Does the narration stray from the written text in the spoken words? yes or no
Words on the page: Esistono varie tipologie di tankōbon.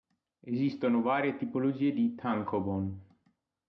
no